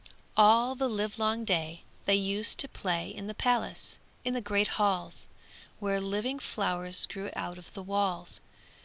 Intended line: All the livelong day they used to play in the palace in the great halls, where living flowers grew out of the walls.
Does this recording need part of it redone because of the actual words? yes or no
no